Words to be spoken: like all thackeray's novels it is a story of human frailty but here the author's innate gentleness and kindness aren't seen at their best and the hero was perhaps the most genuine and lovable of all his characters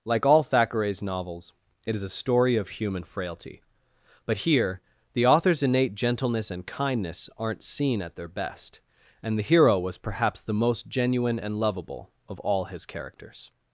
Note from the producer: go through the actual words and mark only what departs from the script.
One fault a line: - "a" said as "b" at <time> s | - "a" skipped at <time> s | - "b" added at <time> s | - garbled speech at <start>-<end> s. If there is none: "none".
none